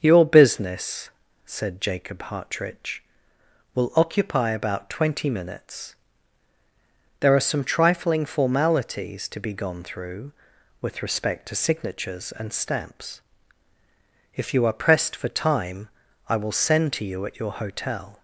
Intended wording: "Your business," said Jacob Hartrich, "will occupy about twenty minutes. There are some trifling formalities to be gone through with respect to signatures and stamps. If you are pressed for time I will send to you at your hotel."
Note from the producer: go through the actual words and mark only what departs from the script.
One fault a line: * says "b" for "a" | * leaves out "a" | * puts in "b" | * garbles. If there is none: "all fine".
all fine